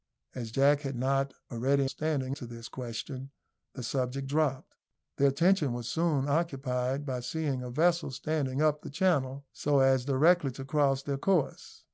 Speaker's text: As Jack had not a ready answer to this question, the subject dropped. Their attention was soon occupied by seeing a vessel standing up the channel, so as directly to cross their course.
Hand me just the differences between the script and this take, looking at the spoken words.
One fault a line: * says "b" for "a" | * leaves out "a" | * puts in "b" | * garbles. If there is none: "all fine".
* says "standing" for "answer"